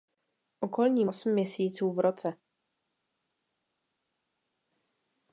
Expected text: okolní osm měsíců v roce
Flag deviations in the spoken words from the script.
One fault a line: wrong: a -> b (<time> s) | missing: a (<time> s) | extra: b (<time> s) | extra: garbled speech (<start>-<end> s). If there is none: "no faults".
no faults